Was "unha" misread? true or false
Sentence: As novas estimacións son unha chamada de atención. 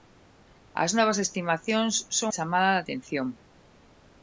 true